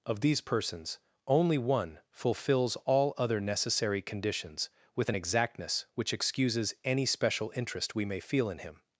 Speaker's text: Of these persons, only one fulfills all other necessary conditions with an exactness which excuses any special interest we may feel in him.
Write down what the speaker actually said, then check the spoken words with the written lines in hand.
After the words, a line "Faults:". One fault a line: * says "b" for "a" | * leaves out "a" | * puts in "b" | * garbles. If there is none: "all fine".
Of these persons, only one fulfills all other necessary conditions with an exactness which excuses any special interest we may feel in him.
Faults:
all fine